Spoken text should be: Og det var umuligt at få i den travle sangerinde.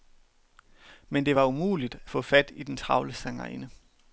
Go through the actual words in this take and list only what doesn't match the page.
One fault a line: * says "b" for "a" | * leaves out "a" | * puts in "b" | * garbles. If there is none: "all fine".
* says "Men" for "Og"
* puts in "fat"